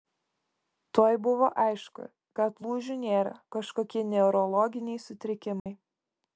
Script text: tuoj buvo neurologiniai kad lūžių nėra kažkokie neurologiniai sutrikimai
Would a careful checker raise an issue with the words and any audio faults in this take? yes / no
yes